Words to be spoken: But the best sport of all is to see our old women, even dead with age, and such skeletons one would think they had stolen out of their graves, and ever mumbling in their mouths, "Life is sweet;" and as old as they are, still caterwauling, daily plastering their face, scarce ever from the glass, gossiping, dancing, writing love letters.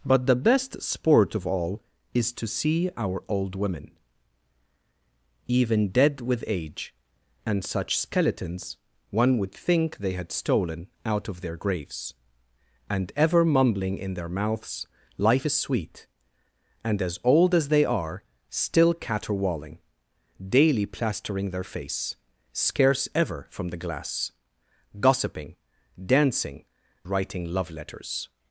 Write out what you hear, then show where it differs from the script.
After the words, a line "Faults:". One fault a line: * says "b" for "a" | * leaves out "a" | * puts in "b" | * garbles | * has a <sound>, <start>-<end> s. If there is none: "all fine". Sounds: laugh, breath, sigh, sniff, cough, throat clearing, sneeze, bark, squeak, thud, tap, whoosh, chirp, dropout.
But the best sport of all is to see our old women, even dead with age, and such skeletons one would think they had stolen out of their graves, and ever mumbling in their mouths, "Life is sweet;" and as old as they are, still caterwauling, daily plastering their face, scarce ever from the glass, gossiping, dancing, writing love letters.
Faults:
all fine